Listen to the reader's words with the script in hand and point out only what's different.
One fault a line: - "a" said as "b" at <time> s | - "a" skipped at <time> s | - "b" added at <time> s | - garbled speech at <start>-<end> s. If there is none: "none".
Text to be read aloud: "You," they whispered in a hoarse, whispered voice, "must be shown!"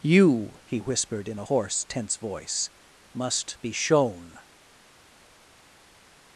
- "they" said as "he" at 0.7 s
- "whispered" said as "tense" at 1.8 s